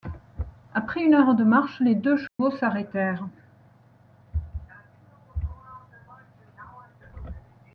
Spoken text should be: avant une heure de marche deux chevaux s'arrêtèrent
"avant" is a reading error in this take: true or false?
true